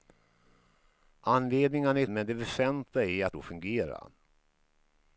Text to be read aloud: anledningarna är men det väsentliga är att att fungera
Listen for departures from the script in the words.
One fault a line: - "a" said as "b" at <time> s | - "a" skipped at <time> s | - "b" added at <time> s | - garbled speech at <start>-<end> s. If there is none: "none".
none